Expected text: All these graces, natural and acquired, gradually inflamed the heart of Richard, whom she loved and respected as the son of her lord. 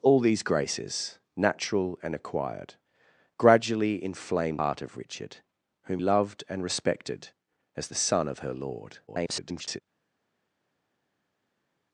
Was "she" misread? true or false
true